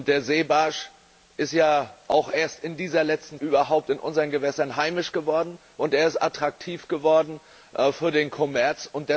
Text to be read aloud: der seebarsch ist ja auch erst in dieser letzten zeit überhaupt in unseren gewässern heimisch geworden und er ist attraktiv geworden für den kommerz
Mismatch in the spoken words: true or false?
true